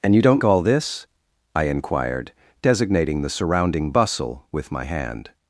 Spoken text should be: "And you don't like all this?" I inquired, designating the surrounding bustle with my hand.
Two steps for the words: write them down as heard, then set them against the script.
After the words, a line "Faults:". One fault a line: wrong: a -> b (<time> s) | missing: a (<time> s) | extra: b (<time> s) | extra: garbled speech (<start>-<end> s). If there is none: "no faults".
"And you don't all this?" I inquired, designating the surrounding bustle with my hand.
Faults:
missing: like (0.4 s)